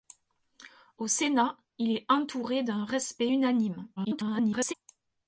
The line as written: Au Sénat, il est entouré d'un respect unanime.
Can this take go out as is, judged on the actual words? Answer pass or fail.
fail